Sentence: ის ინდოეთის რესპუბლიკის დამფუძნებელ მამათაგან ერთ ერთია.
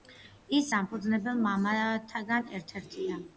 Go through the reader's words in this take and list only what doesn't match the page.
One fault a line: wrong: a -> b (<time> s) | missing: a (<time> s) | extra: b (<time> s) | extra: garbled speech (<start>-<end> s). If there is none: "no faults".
missing: ინდოეთის რესპუბლიკის (0.7 s)